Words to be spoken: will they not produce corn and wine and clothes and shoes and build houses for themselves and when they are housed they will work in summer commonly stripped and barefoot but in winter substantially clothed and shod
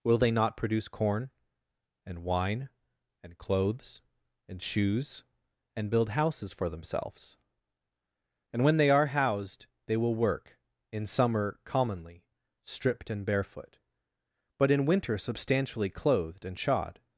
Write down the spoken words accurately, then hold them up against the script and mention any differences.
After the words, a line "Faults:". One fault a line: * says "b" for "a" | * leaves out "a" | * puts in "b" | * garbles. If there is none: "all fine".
will they not produce corn and wine and clothes and shoes and build houses for themselves and when they are housed they will work in summer commonly stripped and barefoot but in winter substantially clothed and shod
Faults:
all fine